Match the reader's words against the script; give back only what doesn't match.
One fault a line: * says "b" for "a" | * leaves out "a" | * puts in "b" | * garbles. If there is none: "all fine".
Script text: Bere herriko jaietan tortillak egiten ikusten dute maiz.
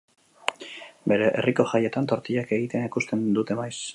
all fine